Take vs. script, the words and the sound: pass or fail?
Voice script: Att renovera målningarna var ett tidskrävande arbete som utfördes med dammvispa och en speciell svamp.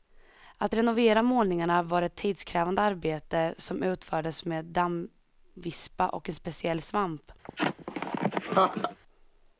fail